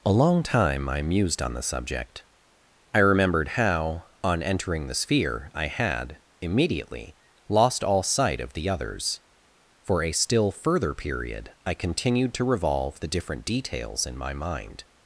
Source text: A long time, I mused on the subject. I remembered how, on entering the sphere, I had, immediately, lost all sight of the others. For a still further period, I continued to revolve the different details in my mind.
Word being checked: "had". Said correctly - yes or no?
yes